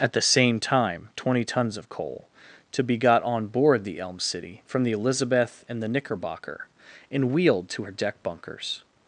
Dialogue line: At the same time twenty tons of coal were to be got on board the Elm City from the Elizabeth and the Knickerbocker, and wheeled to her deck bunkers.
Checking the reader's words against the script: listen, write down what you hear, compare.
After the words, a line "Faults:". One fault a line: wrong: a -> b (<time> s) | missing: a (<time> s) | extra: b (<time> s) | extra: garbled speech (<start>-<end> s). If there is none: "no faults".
At the same time twenty tons of coal to be got on board the Elm City from the Elizabeth and the Knickerbocker, and wheeled to her deck bunkers.
Faults:
missing: were (2.3 s)